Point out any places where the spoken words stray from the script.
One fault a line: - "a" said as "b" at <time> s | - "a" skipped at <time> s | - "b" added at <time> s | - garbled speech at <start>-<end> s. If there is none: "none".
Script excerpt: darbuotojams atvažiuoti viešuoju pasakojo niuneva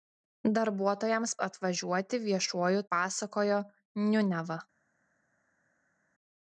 none